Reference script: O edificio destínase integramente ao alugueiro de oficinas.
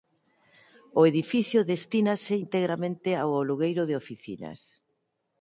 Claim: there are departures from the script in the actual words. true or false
false